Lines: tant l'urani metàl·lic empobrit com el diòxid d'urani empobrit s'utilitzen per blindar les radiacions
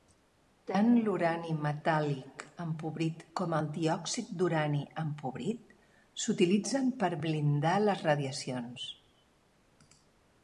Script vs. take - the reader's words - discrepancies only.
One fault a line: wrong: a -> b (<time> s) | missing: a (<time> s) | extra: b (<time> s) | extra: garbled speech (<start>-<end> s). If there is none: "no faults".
no faults